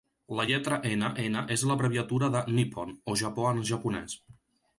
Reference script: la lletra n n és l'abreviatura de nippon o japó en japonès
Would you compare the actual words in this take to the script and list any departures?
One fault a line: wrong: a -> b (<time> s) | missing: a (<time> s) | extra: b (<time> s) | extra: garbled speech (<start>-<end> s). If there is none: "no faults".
no faults